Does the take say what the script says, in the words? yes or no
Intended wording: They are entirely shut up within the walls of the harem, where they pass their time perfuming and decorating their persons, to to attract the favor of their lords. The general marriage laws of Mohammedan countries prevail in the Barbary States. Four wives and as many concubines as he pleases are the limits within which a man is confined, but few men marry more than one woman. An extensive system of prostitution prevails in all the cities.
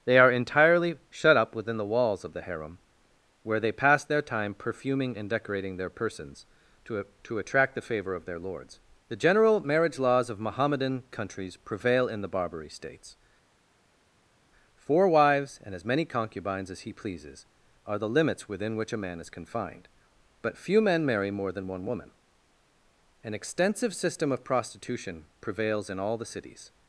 yes